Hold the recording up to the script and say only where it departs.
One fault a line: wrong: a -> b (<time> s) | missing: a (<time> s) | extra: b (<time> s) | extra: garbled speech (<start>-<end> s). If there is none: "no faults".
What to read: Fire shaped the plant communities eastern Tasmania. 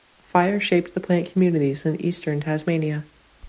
extra: in (1.9 s)